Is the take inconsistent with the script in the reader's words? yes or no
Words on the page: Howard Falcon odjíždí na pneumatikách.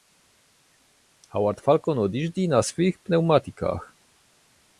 yes